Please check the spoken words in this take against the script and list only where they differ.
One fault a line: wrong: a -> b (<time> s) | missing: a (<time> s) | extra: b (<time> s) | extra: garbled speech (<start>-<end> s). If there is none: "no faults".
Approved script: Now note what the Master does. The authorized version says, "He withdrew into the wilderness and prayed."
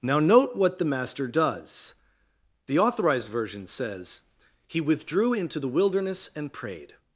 no faults